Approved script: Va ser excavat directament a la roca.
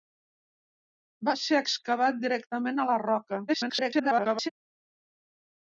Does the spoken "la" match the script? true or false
true